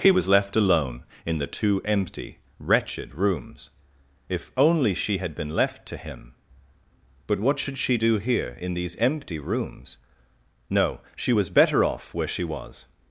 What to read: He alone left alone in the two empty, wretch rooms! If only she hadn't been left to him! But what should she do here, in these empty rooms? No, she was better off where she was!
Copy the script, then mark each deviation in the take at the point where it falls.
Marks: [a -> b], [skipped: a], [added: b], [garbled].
He [alone -> was] left alone in the two empty, [wretch -> wretched] rooms! If only she [hadn't -> had] been left to him! But what should she do here, in these empty rooms? No, she was better off where she was!